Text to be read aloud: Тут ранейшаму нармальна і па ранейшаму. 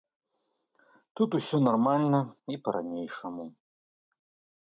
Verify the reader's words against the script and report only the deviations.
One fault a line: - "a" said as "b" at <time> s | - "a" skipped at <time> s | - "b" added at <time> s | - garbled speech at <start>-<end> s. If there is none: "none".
- "ранейшаму" said as "усё" at 1.4 s